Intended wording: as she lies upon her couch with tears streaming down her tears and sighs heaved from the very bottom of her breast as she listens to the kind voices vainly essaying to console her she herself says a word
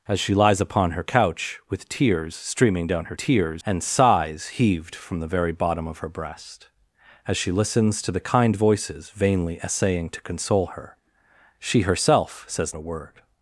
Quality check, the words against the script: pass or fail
pass